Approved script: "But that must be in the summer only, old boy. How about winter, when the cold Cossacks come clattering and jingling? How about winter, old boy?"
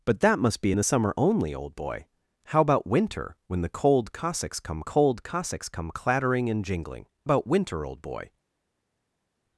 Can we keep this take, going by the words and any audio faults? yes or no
no